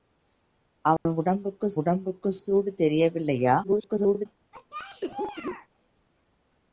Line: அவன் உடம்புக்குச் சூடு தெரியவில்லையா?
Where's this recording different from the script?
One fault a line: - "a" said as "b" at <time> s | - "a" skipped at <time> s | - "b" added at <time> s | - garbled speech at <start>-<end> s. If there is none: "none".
- "உடம்புக்குச்" added at 1.8 s
- garbled speech at 3.6-4.3 s